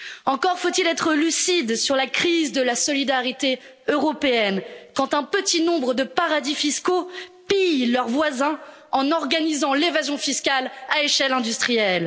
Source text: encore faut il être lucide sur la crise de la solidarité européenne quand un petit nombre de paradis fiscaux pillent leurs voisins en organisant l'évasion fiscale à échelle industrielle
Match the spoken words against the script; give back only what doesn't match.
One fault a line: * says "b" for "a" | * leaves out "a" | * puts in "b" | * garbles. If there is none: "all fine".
all fine